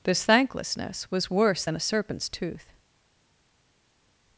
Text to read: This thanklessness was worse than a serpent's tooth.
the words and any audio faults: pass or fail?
pass